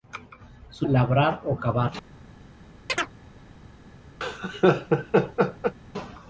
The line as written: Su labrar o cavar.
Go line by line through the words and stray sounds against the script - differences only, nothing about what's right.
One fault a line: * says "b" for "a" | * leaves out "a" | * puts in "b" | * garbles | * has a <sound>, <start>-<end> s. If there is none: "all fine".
* has a chirp, 2.9-3.1 s
* has a laugh, 4.2-5.7 s